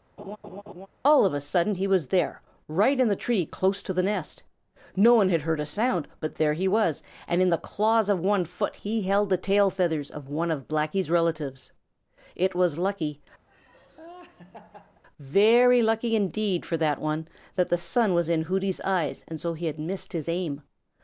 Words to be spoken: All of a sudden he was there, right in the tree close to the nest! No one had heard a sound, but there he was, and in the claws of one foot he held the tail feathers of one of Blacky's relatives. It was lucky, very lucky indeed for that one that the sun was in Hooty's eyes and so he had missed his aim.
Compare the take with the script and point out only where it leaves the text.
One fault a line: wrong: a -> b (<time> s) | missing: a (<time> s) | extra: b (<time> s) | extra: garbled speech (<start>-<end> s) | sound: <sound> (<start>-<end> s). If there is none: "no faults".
sound: laugh (0.2-0.9 s)
sound: laugh (13.5-15.0 s)